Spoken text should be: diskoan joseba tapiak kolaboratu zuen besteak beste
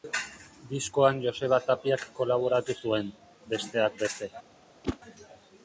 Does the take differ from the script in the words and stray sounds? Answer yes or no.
yes